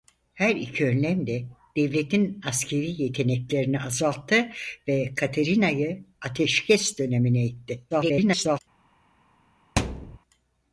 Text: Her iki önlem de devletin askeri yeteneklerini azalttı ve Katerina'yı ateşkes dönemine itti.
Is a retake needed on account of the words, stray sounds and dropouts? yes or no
yes